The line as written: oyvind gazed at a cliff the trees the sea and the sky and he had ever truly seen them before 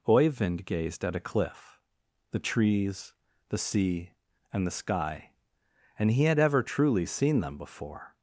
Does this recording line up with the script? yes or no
yes